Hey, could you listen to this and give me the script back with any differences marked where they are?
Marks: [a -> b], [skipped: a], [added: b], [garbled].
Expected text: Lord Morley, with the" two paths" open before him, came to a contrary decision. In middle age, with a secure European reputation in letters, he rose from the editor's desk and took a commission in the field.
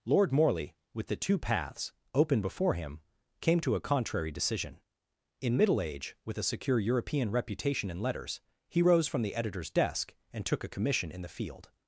Lord Morley, with the" two paths" open before him, came to a contrary decision. In middle age, with a secure European reputation in letters, he rose from the editor's desk and took a commission in the field.